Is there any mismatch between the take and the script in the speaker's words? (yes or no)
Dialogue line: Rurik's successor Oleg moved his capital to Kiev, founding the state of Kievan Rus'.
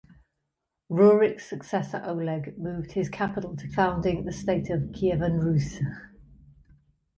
yes